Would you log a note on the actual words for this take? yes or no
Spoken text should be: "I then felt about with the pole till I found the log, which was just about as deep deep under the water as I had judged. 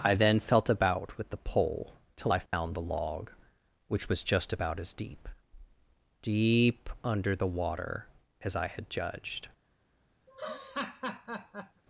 no